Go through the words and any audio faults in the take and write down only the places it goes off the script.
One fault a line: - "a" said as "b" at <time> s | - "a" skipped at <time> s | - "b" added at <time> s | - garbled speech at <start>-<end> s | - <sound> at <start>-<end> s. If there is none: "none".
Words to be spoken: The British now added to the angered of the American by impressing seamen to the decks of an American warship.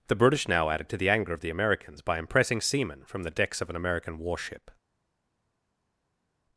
- "angered" said as "anger" at 1.1 s
- "American" said as "Americans" at 1.5 s
- "to" said as "from" at 3.0 s